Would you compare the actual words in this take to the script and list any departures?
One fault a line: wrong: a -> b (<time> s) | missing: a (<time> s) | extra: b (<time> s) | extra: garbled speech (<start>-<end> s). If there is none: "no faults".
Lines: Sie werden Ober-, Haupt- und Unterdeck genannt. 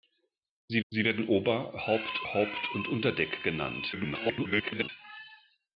extra: sie (0.9 s)
extra: Haupt (2.3 s)
extra: garbled speech (3.9-4.9 s)